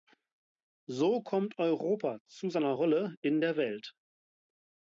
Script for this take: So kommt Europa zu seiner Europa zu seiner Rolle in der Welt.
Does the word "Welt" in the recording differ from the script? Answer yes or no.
no